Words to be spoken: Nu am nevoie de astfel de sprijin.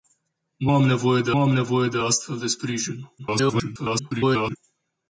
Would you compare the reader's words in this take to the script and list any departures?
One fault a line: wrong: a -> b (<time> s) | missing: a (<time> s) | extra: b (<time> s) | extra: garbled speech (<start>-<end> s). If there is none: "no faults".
extra: am nevoie de (1.4 s)
extra: garbled speech (3.2-4.6 s)